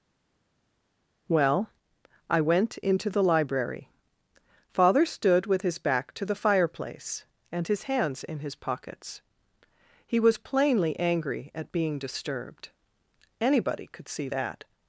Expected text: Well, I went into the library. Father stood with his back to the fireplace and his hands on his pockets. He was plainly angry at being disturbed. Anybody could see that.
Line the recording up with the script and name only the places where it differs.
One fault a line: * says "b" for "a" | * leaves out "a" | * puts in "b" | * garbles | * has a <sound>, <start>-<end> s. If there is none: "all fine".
* says "in" for "on"